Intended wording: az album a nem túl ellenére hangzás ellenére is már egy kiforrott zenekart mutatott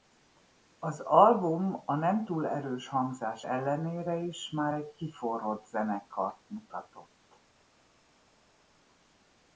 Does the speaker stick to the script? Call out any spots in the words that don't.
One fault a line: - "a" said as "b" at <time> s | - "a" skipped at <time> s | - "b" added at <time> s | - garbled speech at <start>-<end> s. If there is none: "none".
- "ellenére" said as "erős" at 2.5 s